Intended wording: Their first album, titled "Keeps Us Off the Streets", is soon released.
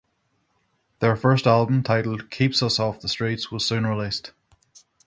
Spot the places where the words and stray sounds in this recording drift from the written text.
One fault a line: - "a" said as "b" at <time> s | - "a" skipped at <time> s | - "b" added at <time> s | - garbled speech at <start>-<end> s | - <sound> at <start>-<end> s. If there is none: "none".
- "is" said as "was" at 3.5 s